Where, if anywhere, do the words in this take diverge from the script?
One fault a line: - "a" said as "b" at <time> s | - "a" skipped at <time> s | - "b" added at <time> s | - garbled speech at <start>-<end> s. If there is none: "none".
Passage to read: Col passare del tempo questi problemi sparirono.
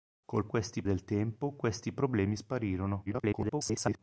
- "passare" said as "questi" at 0.5 s
- garbled speech at 3.1-4.0 s